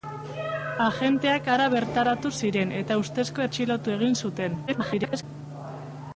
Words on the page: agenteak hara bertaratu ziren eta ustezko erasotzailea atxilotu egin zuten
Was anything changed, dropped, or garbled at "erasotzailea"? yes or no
yes